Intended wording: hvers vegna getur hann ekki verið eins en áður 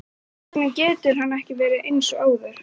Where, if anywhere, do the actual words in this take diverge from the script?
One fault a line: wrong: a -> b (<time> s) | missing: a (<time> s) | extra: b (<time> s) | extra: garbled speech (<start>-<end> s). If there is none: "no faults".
wrong: en -> og (2.2 s)